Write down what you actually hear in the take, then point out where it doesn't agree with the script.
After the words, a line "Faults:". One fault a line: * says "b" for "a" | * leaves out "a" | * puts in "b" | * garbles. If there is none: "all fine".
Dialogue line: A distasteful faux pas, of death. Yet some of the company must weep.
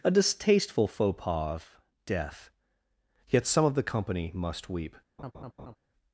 A distasteful faux pas, of death. Yet some of the company must weep.
Faults:
all fine